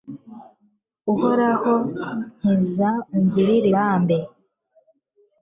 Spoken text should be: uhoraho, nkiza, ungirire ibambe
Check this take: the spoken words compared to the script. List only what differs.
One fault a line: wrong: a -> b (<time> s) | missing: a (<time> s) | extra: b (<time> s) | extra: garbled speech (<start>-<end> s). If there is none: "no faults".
no faults